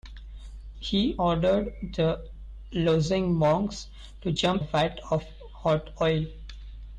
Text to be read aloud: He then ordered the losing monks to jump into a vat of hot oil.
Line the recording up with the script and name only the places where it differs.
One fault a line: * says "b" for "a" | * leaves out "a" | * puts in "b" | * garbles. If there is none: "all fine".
* leaves out "then"
* leaves out "into a"